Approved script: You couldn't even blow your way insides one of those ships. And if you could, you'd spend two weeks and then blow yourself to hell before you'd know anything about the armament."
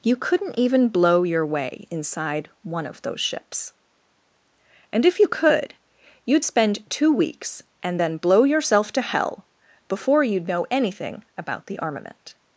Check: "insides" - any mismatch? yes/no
yes